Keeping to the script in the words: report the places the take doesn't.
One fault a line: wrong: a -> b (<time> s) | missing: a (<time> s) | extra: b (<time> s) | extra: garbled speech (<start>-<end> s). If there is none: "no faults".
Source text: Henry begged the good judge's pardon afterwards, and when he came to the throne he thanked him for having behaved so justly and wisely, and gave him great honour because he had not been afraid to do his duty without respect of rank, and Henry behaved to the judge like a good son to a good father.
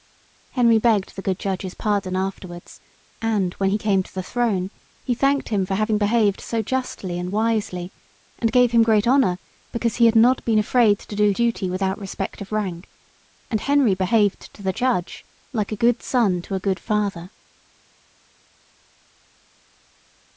missing: his (11.3 s)